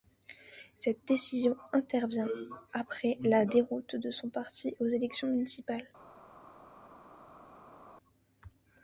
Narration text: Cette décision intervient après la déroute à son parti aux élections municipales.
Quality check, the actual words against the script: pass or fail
fail